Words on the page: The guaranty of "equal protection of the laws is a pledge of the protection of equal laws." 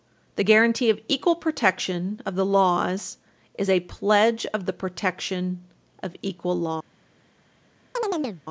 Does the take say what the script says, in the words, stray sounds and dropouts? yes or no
no